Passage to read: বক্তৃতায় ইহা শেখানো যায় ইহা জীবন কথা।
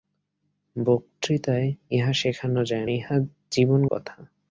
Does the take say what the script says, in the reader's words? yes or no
yes